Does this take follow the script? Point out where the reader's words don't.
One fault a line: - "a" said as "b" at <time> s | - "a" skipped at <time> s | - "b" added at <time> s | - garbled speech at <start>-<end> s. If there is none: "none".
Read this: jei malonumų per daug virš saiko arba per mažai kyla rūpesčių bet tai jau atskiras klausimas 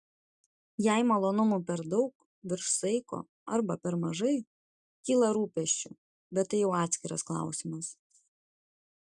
none